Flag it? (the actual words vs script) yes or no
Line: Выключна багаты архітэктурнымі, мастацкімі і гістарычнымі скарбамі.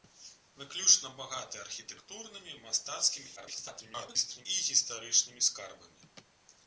yes